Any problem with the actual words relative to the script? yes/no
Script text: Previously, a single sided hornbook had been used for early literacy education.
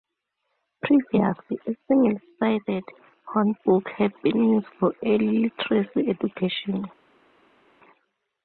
no